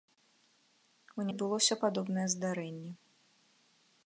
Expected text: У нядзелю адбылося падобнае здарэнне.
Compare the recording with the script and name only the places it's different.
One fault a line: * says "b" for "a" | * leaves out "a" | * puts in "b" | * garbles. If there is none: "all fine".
* leaves out "нядзелю"